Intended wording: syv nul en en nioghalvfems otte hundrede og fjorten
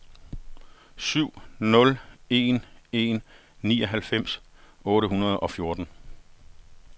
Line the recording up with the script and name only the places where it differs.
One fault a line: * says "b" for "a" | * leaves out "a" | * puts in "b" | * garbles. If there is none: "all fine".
all fine